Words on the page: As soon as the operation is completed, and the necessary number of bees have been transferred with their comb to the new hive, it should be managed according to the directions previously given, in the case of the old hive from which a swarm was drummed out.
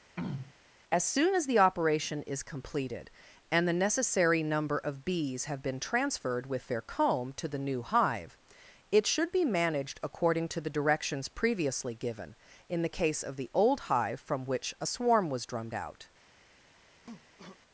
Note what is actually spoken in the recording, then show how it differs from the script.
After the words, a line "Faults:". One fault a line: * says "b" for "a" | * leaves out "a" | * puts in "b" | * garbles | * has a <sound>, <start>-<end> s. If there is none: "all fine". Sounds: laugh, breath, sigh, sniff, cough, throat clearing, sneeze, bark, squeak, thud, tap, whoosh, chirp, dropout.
As soon as the operation is completed, and the necessary number of bees have been transferred with their comb to the new hive, it should be managed according to the directions previously given, in the case of the old hive from which a swarm was drummed out.
Faults:
* has a throat clearing, 0.2-0.5 s
* has a cough, 17.0-17.6 s